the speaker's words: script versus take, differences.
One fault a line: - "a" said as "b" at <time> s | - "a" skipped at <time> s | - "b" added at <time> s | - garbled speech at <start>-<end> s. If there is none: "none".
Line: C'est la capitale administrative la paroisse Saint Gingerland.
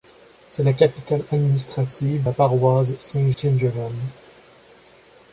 none